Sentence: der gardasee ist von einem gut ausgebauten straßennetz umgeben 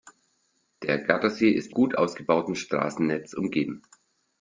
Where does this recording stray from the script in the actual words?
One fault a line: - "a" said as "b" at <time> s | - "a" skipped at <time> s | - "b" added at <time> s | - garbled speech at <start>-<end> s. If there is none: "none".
- "von einem" skipped at 1.8 s